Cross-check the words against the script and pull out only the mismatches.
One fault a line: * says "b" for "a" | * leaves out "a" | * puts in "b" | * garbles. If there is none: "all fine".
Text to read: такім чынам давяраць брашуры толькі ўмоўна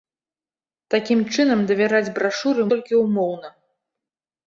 all fine